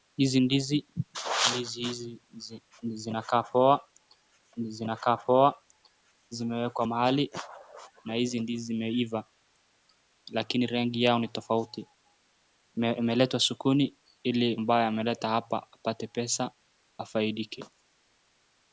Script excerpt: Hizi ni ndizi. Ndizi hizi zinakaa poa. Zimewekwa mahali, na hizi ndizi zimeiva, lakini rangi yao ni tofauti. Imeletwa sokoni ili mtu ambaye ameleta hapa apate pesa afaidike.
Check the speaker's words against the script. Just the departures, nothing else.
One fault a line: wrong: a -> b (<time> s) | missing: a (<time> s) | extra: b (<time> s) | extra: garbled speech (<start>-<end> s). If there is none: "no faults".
missing: ni (0.4 s)
extra: zinakaa poa (4.6 s)
missing: mtu (14.6 s)